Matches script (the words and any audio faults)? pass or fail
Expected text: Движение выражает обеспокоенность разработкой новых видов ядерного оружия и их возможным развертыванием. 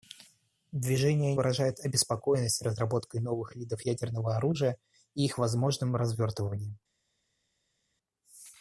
pass